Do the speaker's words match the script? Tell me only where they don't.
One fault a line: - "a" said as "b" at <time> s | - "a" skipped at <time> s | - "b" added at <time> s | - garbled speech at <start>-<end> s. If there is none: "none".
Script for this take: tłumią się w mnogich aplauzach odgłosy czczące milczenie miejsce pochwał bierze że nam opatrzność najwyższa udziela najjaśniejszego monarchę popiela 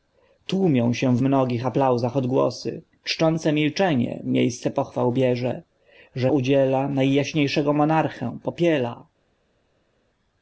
- "nam opatrzność najwyższa" skipped at 6.3 s